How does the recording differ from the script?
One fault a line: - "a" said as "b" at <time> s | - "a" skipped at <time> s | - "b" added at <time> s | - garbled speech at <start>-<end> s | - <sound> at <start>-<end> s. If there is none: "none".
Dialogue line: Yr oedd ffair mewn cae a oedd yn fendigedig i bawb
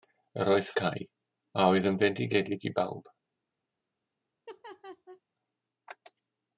- "ffair mewn" skipped at 0.7 s
- laugh at 4.5-5.2 s